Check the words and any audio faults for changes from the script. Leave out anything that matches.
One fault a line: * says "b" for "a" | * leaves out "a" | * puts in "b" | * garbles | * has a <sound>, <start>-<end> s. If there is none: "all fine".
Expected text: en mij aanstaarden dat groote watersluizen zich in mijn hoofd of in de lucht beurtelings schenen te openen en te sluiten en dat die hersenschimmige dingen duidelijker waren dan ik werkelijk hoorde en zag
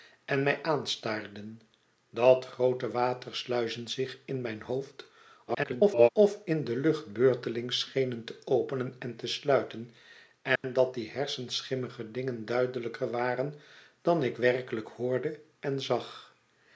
* garbles
* has a dropout, 10.6-10.6 s